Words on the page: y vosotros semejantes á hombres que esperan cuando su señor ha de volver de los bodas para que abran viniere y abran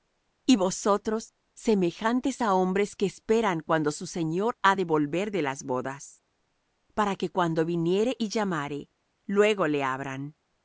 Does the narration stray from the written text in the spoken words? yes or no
yes